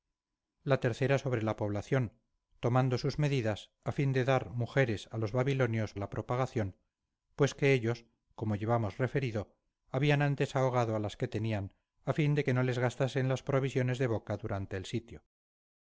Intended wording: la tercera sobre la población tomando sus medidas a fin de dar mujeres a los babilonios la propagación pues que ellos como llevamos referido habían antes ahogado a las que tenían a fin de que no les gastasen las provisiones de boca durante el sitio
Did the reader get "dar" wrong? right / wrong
right